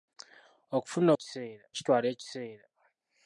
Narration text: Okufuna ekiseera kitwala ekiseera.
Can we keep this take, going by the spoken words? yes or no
yes